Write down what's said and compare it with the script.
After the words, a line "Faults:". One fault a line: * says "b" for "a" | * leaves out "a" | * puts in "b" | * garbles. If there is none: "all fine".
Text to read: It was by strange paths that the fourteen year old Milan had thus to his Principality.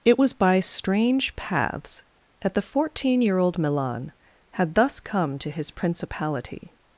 It was by strange paths that the fourteen year old Milan had thus come to his Principality.
Faults:
* puts in "come"